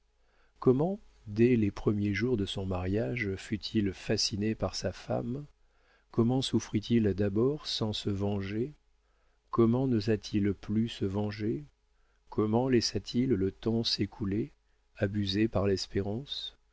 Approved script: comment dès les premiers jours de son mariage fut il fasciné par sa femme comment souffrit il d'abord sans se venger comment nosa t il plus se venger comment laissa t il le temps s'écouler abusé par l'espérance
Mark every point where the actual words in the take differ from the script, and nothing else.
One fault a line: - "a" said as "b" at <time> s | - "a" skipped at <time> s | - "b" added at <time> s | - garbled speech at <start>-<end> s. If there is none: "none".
none